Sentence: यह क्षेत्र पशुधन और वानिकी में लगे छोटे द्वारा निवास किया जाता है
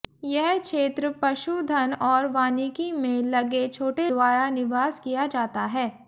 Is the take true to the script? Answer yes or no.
yes